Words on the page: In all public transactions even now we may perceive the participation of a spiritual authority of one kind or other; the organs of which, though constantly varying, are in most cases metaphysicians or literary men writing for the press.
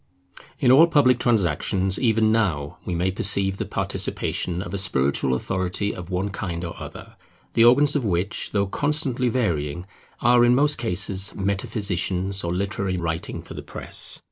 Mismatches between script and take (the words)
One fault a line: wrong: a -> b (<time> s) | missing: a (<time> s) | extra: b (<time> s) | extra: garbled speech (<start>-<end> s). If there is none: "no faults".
missing: men (13.0 s)